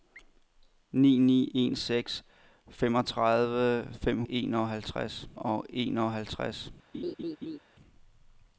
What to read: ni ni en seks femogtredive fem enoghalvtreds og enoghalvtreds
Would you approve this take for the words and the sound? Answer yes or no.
no